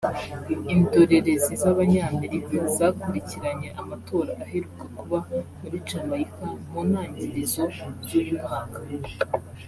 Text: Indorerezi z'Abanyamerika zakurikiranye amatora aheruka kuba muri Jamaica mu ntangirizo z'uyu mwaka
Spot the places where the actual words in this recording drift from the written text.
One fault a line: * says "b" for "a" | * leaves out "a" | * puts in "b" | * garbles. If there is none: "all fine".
all fine